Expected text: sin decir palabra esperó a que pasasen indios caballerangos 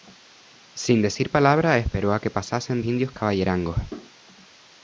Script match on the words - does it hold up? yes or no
yes